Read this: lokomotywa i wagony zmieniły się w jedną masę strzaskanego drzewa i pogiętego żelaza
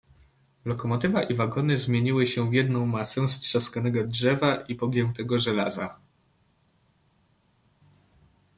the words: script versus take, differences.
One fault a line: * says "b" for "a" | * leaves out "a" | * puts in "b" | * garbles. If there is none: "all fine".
all fine